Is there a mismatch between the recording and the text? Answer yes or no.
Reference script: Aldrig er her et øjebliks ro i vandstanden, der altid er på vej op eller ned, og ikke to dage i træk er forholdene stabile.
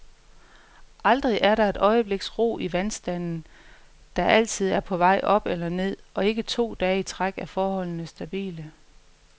yes